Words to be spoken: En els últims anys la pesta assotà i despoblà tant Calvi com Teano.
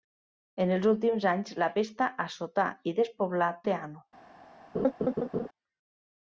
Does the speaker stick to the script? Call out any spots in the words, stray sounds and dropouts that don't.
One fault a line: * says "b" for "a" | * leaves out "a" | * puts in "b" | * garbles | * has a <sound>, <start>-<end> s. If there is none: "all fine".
* leaves out "tant Calvi com"
* has a laugh, 4.7-5.5 s